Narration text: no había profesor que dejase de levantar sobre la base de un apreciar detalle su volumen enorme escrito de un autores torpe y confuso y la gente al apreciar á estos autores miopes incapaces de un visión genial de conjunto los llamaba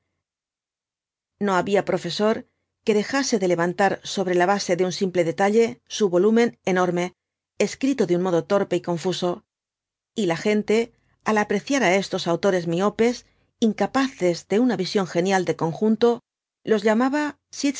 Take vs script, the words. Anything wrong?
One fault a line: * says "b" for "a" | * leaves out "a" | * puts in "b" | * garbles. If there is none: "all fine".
* says "simple" for "apreciar"
* says "modo" for "autores"
* says "una" for "un"